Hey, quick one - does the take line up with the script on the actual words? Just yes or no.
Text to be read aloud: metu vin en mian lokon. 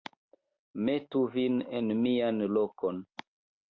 yes